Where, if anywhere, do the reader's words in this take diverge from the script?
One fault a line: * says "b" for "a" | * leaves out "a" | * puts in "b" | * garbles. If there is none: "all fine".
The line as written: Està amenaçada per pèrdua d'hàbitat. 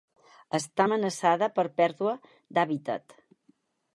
all fine